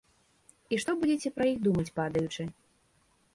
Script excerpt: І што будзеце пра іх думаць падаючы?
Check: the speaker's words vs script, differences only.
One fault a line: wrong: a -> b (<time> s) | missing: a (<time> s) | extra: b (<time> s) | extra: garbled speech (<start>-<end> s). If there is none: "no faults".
no faults